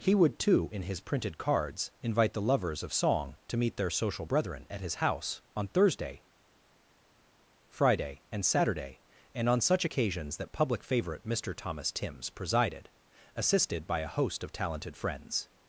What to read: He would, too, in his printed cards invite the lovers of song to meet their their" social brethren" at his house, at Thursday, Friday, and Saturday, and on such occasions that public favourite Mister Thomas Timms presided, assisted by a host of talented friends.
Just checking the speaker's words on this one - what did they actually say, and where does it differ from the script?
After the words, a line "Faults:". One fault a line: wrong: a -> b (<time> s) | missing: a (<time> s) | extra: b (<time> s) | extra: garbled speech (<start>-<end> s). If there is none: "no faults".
He would, too, in his printed cards invite the lovers of song to meet their" social brethren" at his house, on Thursday, Friday, and Saturday, and on such occasions that public favourite Mister Thomas Timms presided, assisted by a host of talented friends.
Faults:
missing: their (3.9 s)
wrong: at -> on (5.5 s)